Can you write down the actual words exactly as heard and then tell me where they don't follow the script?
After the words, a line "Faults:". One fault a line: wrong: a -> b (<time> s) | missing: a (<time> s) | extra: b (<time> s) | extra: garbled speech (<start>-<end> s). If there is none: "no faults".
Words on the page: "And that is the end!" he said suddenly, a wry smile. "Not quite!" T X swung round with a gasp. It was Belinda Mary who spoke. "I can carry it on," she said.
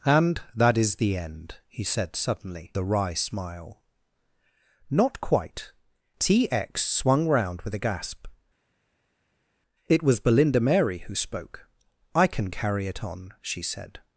"And that is the end!" he said suddenly, a wry smile. "Not quite!" T X swung round with a gasp. It was Belinda Mary who spoke. "I can carry it on," she said.
Faults:
no faults